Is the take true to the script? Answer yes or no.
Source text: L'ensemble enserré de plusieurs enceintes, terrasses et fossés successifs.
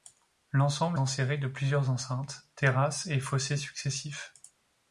yes